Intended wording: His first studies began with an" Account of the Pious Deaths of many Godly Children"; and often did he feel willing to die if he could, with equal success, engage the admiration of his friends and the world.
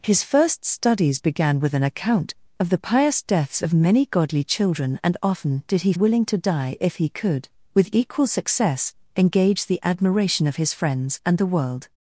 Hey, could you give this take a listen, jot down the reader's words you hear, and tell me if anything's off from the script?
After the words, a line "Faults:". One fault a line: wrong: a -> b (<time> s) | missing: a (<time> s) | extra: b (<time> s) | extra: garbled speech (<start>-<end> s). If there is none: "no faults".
His first studies began with an" Account of the Pious Deaths of many Godly Children"; and often did he willing to die if he could, with equal success, engage the admiration of his friends and the world.
Faults:
missing: feel (5.9 s)